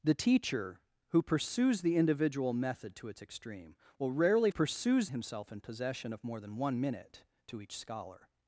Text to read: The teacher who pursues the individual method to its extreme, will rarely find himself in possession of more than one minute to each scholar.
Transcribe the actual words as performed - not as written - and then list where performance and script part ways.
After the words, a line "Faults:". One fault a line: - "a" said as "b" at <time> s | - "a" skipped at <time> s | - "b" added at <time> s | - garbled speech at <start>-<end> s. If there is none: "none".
The teacher who pursues the individual method to its extreme, will rarely pursues himself in possession of more than one minute to each scholar.
Faults:
- "find" said as "pursues" at 4.5 s